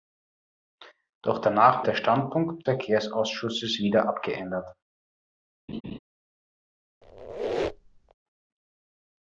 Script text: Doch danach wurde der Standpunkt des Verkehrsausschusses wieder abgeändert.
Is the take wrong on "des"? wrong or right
wrong